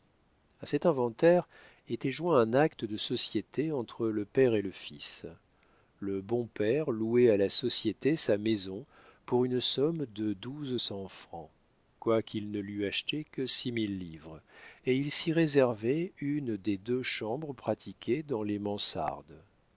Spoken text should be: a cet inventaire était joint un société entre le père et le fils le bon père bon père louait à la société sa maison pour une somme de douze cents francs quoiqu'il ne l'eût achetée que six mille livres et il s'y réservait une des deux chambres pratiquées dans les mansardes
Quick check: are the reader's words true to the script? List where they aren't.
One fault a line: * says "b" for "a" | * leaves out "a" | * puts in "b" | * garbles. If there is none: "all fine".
* puts in "acte de"
* leaves out "bon père"